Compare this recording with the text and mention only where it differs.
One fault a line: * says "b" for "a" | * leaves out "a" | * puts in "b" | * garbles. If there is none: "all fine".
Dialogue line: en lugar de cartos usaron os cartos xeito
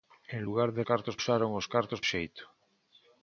all fine